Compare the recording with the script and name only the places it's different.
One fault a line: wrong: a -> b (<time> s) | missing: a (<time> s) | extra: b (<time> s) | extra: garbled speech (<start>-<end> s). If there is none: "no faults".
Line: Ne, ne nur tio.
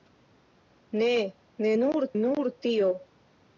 extra: nur (2.2 s)